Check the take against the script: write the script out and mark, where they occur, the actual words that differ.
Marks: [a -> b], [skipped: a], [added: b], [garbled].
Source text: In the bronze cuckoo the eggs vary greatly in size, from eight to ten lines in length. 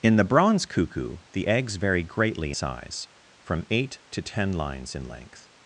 In the bronze cuckoo the eggs vary greatly [skipped: in] size, from eight to ten lines in length.